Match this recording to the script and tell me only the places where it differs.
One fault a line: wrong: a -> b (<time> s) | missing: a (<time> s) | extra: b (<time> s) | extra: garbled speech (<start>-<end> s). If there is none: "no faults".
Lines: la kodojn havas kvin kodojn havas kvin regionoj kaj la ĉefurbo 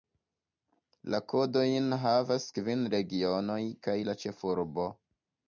missing: kodojn havas kvin (2.9 s)